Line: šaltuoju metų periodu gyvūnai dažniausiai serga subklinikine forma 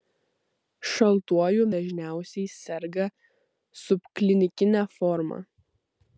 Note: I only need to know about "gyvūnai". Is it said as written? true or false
false